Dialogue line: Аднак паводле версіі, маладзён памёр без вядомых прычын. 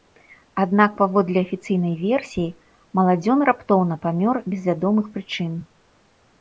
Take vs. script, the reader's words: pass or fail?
fail